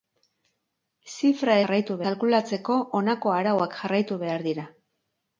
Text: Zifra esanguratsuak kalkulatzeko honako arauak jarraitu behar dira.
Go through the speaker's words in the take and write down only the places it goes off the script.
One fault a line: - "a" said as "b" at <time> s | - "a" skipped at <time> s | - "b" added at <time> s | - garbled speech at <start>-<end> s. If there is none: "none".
- "esanguratsuak" said as "jarraitu" at 1.6 s